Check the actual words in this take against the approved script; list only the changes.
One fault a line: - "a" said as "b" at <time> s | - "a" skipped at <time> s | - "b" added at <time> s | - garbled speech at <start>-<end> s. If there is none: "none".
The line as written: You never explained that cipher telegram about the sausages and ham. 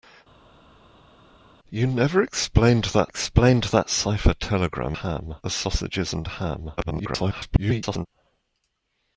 - "explained that" added at 3.0 s
- "about" said as "ham" at 4.9 s
- garbled speech at 6.8-8.1 s